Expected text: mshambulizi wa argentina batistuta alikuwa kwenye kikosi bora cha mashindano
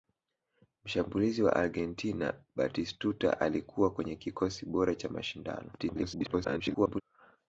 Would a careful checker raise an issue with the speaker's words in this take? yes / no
yes